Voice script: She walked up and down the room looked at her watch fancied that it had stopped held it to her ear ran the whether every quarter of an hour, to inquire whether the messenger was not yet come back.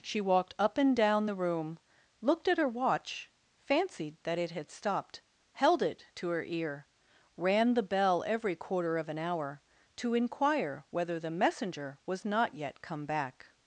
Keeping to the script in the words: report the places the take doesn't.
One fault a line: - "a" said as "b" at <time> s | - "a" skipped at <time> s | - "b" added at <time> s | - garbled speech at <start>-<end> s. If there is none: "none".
- "whether" said as "bell" at 7.8 s